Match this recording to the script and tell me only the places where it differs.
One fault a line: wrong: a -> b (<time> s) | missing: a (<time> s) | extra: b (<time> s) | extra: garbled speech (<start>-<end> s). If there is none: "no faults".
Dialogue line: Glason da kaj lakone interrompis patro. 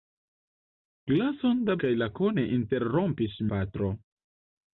no faults